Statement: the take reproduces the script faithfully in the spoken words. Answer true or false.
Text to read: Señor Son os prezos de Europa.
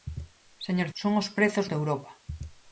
true